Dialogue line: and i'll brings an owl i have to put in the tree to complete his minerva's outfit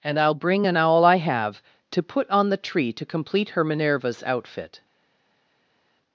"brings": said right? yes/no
no